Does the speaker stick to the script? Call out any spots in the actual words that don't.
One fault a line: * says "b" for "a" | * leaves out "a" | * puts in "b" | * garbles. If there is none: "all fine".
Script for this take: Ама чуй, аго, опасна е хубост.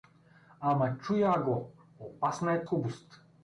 all fine